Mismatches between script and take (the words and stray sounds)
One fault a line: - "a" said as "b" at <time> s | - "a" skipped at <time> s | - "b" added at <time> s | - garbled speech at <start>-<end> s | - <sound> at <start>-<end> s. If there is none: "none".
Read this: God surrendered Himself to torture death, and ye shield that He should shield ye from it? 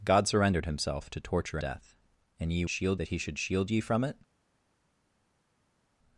none